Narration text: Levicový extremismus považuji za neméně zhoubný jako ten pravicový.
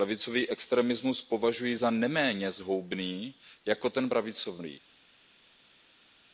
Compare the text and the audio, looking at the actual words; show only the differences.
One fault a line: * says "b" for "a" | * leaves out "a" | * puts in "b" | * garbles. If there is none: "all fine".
all fine